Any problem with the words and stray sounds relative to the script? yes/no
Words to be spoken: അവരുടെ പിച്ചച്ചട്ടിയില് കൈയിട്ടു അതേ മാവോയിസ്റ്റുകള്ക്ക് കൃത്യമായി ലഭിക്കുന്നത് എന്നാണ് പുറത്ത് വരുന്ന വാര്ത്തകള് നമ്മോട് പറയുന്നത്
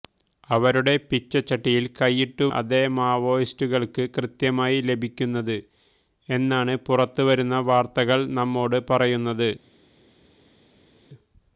no